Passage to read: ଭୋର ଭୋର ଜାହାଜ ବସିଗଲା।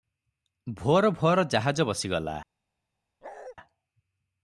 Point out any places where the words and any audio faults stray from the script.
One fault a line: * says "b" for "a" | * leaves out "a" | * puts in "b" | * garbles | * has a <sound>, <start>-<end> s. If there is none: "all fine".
* has a bark, 3.2-3.6 s